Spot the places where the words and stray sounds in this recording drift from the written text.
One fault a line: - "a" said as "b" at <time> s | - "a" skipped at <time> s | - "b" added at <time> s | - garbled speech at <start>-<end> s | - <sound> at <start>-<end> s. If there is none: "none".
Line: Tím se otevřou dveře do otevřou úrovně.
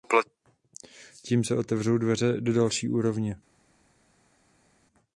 - "otevřou" said as "další" at 2.5 s